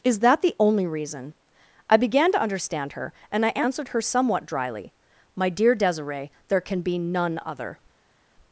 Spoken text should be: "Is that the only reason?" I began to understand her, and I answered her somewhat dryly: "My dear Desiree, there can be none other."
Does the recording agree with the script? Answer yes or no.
yes